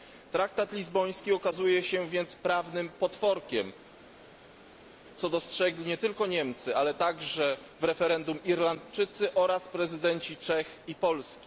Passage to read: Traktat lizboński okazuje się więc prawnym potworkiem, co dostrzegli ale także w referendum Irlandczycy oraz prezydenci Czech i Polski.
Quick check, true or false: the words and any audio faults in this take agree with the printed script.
false